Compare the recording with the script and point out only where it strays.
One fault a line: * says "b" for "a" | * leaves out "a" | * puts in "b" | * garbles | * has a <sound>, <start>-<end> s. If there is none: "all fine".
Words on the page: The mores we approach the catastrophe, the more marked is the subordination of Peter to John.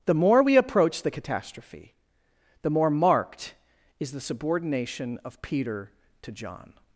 * says "more" for "mores"